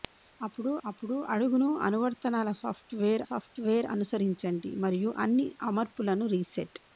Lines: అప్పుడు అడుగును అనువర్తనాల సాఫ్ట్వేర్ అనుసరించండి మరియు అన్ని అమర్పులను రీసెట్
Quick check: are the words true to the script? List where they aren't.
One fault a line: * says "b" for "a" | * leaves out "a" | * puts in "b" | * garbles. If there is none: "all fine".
* puts in "అప్పుడు"
* puts in "సాఫ్ట్వేర్"